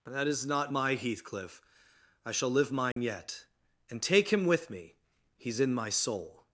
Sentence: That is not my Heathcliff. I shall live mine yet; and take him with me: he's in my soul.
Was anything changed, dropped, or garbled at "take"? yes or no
no